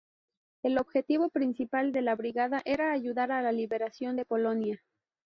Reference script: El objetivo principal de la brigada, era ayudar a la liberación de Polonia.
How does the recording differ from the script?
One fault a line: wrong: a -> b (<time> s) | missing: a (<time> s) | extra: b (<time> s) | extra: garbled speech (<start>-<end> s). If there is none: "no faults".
no faults